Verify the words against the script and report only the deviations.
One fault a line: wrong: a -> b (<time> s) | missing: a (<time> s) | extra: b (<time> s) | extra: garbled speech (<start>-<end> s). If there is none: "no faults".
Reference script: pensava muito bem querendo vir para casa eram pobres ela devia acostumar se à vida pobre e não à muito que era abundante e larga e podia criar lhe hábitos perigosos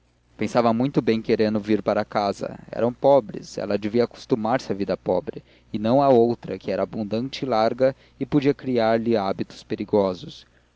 wrong: muito -> outra (6.1 s)